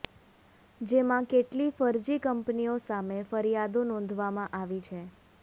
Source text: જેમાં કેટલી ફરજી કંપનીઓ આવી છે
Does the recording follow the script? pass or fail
fail